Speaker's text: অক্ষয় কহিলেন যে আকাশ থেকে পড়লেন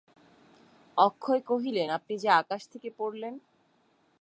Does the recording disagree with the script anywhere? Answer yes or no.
yes